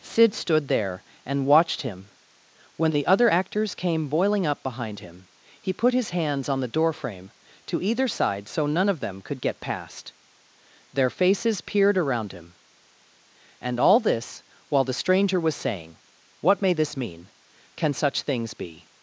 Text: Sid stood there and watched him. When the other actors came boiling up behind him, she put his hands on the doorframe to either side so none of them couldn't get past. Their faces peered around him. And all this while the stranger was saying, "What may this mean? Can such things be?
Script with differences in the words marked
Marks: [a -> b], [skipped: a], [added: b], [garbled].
Sid stood there and watched him. When the other actors came boiling up behind him, [she -> he] put his hands on the doorframe to either side so none of them [couldn't -> could] get past. Their faces peered around him. And all this while the stranger was saying, "What may this mean? Can such things be?